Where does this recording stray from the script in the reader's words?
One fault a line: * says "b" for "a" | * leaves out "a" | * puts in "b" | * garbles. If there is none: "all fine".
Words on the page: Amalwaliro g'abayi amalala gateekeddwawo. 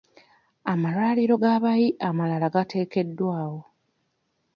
all fine